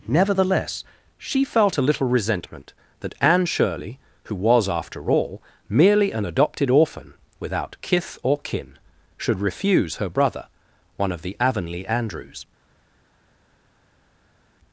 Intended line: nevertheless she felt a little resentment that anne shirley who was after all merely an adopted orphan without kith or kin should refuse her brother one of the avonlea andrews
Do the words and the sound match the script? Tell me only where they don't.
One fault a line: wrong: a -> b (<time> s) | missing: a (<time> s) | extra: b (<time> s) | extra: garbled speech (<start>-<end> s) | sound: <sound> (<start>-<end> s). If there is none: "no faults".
no faults